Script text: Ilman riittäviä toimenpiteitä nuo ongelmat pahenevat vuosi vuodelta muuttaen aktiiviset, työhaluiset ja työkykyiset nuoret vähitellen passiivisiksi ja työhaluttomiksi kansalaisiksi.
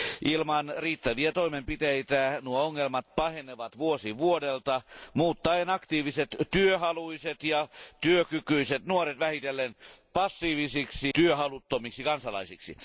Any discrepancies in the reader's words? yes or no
yes